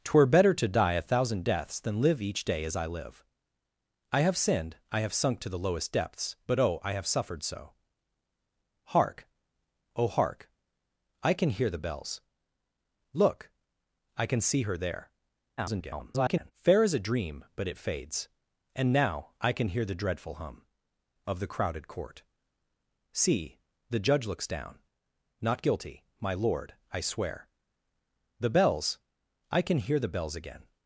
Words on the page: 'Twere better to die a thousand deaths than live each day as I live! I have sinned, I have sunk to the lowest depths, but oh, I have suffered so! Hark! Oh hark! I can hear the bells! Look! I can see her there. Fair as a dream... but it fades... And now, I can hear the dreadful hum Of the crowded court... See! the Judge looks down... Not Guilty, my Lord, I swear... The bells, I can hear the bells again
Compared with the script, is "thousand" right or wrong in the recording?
right